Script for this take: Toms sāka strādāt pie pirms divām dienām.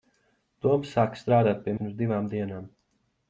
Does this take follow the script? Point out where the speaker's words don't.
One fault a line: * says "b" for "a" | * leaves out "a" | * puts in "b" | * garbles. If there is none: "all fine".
all fine